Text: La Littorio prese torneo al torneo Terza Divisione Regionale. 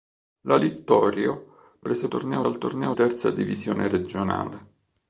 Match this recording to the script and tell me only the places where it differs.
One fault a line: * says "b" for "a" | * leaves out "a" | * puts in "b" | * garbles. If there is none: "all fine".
all fine